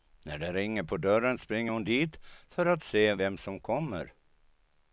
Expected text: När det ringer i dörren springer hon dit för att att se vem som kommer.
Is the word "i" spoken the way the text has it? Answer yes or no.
no